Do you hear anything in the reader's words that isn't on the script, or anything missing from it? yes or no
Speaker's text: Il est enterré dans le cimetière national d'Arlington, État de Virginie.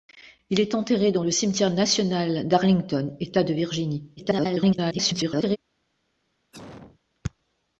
yes